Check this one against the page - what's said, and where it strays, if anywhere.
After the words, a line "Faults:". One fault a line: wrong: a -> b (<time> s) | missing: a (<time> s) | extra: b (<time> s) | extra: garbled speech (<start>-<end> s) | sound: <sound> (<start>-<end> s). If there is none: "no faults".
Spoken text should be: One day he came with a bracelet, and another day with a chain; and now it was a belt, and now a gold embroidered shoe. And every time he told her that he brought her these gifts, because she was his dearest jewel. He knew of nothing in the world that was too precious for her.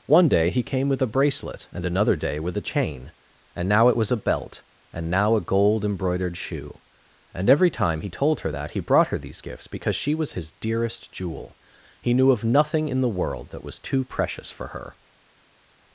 One day he came with a bracelet, and another day with a chain; and now it was a belt, and now a gold embroidered shoe. And every time he told her that he brought her these gifts, because she was his dearest jewel. He knew of nothing in the world that was too precious for her.
Faults:
no faults